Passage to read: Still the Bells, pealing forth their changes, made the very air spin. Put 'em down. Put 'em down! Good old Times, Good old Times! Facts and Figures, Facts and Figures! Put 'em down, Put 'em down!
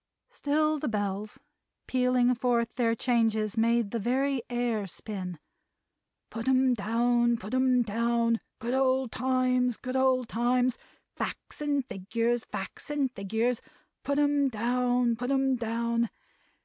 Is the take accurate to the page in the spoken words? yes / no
yes